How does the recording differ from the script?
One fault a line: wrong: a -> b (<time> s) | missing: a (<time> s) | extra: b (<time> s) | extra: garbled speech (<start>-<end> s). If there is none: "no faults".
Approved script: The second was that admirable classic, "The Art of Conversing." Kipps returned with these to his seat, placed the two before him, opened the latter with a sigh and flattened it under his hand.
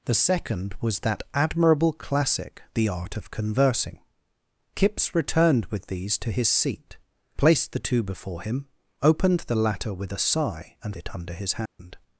missing: flattened (10.9 s)